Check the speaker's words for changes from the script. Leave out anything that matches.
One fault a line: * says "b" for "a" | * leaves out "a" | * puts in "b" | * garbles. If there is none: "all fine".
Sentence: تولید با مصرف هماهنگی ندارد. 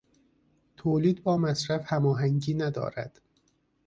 all fine